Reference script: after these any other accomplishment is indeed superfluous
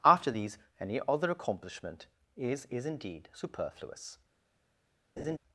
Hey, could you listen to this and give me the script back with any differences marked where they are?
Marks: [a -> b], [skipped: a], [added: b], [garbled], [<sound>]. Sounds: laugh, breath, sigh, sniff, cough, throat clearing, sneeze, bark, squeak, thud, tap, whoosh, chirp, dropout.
after these any other accomplishment is [added: is] indeed superfluous [laugh]